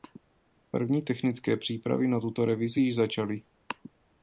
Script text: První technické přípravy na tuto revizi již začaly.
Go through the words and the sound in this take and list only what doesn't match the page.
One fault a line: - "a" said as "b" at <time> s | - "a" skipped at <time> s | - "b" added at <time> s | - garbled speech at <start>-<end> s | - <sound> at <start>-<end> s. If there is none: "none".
none